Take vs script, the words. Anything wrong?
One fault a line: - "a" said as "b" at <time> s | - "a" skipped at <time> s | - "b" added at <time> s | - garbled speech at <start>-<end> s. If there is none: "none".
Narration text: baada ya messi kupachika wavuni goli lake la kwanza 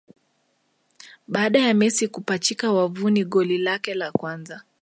none